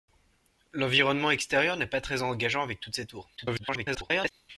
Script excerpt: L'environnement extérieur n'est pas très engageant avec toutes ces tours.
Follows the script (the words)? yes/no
no